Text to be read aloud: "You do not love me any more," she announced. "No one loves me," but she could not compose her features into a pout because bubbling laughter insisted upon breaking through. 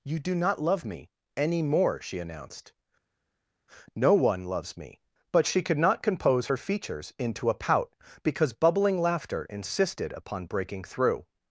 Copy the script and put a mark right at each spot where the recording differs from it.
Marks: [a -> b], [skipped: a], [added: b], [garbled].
"You do not love me any more," she announced. "No one loves me," but she could not compose her features into a pout because bubbling laughter insisted upon breaking through.